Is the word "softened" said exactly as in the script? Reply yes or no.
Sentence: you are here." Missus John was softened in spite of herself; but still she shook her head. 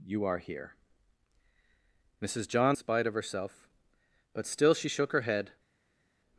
no